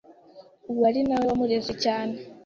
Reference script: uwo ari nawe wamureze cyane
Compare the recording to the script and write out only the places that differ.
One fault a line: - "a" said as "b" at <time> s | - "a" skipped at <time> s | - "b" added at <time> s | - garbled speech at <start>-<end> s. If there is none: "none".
none